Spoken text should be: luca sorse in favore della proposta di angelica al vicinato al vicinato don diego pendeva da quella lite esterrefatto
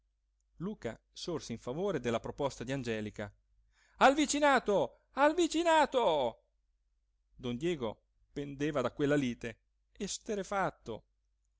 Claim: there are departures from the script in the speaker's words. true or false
false